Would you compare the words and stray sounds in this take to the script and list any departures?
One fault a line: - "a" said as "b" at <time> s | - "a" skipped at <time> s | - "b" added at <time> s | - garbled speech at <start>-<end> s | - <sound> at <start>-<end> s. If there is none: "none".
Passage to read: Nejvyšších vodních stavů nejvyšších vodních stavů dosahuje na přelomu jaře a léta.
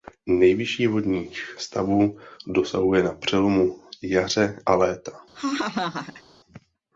- "nejvyšších vodních stavů" skipped at 2.2 s
- laugh at 5.3-6.2 s